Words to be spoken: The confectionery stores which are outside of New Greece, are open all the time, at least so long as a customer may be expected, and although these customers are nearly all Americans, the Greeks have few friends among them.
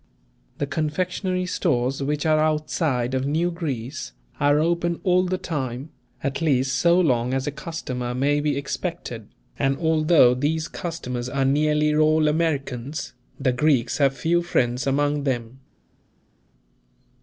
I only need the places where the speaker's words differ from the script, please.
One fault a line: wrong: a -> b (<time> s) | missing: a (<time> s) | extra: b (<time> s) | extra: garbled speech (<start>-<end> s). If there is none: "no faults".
no faults